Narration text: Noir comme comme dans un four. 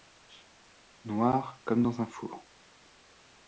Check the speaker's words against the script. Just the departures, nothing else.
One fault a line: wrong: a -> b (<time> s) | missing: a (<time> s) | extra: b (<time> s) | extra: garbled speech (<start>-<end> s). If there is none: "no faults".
missing: comme (1.8 s)